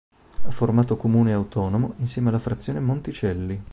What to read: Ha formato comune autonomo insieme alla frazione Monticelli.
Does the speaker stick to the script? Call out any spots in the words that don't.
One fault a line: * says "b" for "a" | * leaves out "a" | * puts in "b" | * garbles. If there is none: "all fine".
all fine